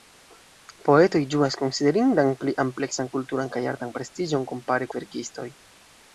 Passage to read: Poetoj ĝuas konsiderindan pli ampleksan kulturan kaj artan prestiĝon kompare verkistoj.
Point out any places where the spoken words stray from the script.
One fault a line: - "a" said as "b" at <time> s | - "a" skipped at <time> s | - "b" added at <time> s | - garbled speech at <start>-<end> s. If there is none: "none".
none